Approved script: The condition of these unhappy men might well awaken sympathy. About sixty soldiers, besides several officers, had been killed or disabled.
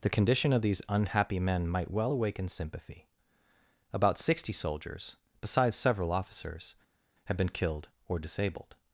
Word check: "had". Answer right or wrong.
right